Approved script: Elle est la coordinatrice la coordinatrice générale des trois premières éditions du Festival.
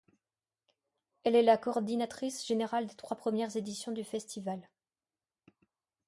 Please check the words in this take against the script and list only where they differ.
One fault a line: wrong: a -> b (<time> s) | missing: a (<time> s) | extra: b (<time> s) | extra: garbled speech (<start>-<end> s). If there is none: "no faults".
missing: la coordinatrice (2.4 s)